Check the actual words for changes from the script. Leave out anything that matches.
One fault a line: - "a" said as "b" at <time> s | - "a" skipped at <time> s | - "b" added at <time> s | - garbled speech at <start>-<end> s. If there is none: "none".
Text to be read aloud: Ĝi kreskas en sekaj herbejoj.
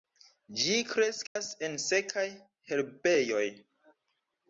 none